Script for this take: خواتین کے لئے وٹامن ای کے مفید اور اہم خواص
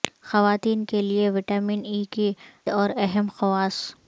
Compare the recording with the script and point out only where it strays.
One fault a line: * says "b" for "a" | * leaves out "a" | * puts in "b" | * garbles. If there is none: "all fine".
* leaves out "مفید"